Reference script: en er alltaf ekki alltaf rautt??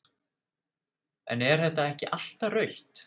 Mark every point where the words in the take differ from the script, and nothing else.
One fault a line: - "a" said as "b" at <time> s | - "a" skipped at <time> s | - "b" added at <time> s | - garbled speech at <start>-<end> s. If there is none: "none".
- "alltaf" said as "þetta" at 1.6 s